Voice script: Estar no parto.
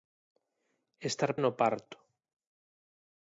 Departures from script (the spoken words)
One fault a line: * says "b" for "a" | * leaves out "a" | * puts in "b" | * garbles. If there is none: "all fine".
all fine